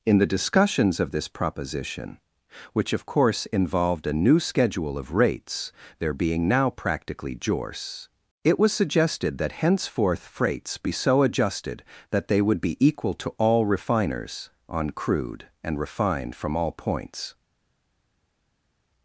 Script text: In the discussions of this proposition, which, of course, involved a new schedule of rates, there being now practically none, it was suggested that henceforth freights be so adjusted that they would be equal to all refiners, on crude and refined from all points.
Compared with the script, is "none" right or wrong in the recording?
wrong